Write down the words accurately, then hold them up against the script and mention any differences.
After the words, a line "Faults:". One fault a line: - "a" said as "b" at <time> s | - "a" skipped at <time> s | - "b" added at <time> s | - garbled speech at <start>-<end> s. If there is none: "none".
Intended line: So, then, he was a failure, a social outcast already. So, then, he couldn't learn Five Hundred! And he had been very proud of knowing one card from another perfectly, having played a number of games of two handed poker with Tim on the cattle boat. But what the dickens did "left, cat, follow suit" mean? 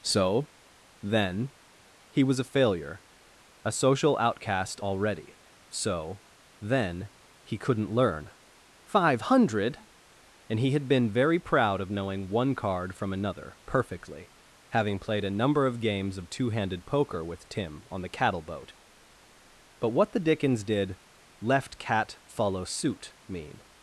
So, then, he was a failure, a social outcast already. So, then, he couldn't learn Five Hundred! And he had been very proud of knowing one card from another perfectly, having played a number of games of two handed poker with Tim on the cattle boat. But what the dickens did "left, cat, follow suit" mean?
Faults:
none